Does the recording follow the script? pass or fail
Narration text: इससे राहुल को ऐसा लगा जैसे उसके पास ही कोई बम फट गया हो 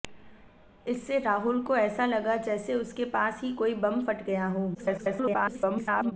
fail